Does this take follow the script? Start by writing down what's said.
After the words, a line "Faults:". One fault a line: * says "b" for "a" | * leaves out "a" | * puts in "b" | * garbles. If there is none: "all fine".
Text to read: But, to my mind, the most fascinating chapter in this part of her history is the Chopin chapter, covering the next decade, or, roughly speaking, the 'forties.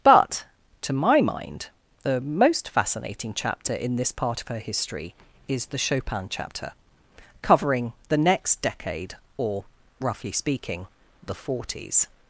But, to my mind, the most fascinating chapter in this part of her history is the Chopin chapter, covering the next decade, or, roughly speaking, the 'forties.
Faults:
all fine